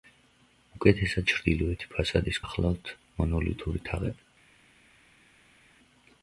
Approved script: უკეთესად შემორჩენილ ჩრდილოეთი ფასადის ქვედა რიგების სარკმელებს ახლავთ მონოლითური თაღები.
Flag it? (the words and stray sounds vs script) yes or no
yes